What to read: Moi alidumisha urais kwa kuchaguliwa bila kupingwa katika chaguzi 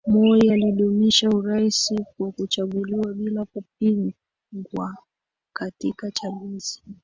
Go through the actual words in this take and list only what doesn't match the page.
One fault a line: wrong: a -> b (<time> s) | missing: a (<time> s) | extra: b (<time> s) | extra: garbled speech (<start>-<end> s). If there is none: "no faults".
no faults